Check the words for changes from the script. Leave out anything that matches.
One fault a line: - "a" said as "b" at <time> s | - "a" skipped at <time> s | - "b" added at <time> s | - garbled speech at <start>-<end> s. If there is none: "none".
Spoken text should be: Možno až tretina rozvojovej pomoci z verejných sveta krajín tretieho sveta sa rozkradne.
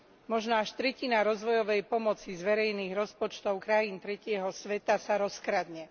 - "sveta" said as "rozpočtov" at 2.9 s